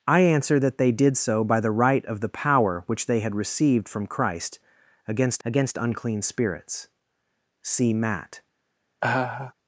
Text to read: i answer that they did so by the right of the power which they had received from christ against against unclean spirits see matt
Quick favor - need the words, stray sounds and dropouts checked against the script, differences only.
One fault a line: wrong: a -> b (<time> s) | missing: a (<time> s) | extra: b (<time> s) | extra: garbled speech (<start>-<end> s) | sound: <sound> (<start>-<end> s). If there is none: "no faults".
sound: laugh (9.0-9.5 s)